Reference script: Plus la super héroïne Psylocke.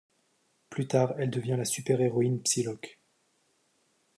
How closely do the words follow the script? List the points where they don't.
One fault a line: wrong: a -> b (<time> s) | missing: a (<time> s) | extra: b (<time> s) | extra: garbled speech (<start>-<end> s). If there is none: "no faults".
extra: tard elle devient (0.9 s)